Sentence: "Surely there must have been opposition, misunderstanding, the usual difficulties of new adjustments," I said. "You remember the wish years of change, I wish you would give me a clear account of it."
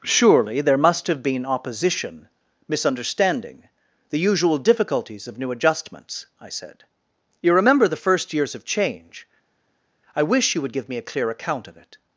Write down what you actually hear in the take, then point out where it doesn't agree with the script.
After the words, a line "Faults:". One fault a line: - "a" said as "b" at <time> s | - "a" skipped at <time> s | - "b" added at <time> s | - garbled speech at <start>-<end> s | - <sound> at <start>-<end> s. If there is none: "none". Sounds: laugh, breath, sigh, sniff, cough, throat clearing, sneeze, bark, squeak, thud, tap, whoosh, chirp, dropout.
"Surely there must have been opposition, misunderstanding, the usual difficulties of new adjustments," I said. "You remember the first years of change, I wish you would give me a clear account of it."
Faults:
- "wish" said as "first" at 8.0 s